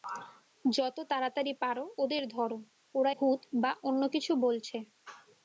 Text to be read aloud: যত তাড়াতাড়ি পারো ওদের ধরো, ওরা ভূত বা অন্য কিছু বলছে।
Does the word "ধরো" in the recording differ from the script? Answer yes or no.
no